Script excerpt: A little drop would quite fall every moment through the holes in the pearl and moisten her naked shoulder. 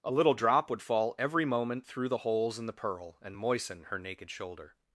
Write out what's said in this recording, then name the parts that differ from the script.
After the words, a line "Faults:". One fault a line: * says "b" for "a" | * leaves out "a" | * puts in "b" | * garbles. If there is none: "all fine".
A little drop would fall every moment through the holes in the pearl and moisten her naked shoulder.
Faults:
* leaves out "quite"